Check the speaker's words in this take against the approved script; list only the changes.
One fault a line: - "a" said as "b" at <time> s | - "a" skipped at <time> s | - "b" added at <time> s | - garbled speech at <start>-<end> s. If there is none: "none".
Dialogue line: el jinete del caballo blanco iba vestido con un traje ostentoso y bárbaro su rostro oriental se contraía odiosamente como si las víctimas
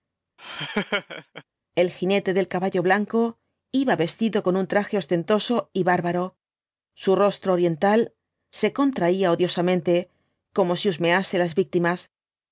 - "husmease" added at 10.9 s